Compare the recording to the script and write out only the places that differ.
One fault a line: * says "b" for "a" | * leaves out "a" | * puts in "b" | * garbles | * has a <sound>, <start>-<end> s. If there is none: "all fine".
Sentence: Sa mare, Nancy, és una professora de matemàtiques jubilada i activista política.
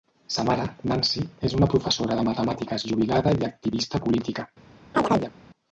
* has a chirp, 4.9-5.3 s